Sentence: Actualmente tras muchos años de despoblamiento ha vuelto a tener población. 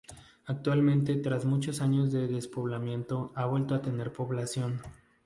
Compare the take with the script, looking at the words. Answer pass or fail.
pass